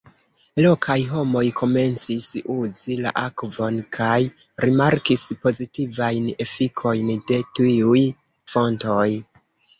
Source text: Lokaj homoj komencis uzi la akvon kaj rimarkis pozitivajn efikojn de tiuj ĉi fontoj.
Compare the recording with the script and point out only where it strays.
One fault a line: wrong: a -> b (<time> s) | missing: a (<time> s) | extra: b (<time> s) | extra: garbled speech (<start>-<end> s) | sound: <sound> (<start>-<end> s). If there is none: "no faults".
missing: ĉi (8.1 s)